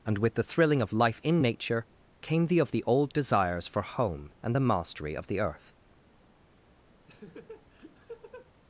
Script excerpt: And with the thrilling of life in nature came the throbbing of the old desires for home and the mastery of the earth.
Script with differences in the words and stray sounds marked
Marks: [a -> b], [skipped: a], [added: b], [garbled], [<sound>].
And with the thrilling of life in nature came the [skipped: throbbing] of the old desires for home and the mastery of the earth. [laugh]